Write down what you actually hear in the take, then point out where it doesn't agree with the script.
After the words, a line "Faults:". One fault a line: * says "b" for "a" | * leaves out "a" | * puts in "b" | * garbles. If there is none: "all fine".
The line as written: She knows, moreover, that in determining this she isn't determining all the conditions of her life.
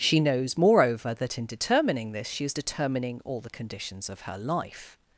She knows, moreover, that in determining this she is determining all the conditions of her life.
Faults:
* says "is" for "isn't"